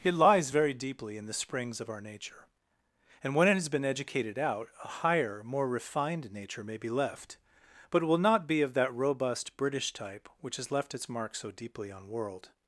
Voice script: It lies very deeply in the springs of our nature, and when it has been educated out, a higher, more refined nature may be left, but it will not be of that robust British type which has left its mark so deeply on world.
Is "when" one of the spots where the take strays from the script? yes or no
no